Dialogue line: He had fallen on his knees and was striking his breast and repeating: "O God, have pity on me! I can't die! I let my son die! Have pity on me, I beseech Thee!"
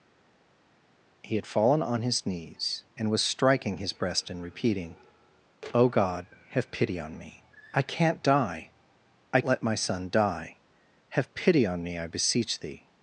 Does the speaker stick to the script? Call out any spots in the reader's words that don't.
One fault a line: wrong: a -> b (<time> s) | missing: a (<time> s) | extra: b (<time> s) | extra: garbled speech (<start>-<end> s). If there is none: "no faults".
no faults